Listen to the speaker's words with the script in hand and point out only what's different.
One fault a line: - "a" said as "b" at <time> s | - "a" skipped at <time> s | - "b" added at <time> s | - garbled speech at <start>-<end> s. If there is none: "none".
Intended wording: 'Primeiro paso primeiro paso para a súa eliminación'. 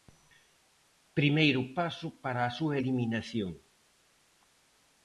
- "primeiro paso" skipped at 2.1 s